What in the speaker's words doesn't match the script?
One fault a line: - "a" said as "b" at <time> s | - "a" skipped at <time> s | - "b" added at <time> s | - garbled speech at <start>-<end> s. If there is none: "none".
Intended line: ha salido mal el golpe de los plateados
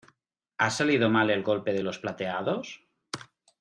none